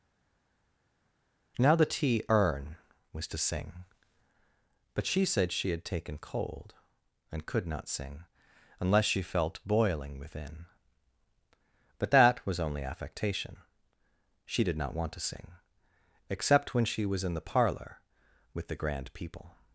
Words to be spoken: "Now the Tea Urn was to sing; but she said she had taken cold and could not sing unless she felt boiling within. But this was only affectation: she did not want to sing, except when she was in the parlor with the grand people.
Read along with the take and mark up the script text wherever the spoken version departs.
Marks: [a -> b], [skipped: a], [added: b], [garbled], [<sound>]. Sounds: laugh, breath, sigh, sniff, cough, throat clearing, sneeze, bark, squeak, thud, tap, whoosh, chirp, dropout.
"Now the Tea Urn was to sing; but she said she had taken cold and could not sing unless she felt boiling within. But [this -> that] was only affectation: she did not want to sing, except when she was in the parlor with the grand people.